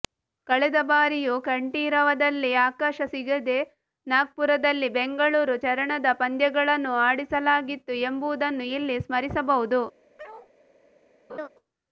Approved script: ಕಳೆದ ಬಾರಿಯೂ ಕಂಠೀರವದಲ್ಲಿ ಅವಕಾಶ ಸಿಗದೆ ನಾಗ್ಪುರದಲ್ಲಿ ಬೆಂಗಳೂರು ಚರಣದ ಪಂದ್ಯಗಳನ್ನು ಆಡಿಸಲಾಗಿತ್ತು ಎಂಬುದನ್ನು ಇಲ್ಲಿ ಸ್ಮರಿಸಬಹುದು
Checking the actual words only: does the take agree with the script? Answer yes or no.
yes